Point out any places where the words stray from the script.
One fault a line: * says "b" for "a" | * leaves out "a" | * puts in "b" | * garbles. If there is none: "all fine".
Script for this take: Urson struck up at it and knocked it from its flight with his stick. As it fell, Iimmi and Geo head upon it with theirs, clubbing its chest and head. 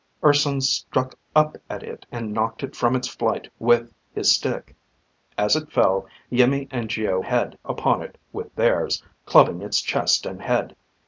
all fine